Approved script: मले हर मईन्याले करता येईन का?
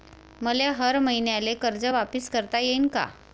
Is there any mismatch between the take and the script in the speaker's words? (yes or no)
yes